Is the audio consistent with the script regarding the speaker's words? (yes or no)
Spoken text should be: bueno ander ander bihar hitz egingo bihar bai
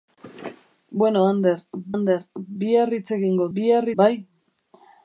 yes